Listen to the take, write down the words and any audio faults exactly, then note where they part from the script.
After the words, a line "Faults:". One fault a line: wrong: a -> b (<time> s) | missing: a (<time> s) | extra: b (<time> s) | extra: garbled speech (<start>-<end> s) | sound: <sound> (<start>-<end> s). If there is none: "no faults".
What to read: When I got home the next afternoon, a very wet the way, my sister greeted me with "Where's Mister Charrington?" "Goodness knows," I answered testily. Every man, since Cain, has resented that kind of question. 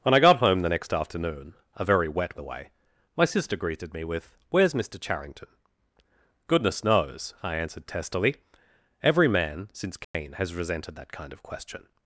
When I got home the next afternoon, a very wet the way, my sister greeted me with "Where's Mister Charrington?" "Goodness knows," I answered testily. Every man, since Cain, has resented that kind of question.
Faults:
sound: dropout (10.0-10.1 s)